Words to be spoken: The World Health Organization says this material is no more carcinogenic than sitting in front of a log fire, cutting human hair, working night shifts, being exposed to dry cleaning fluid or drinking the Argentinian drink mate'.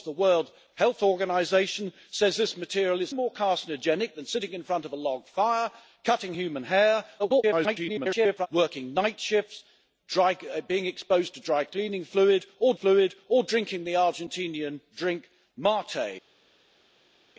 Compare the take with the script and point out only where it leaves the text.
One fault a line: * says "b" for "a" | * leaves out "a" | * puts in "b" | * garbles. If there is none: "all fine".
* leaves out "no"
* garbles
* puts in "fluid or"